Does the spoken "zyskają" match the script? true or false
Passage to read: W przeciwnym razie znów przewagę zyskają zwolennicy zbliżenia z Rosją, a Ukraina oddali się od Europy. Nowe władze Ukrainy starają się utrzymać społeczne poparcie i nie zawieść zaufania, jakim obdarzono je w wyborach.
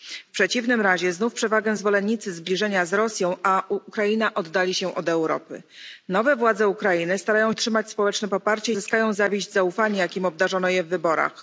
false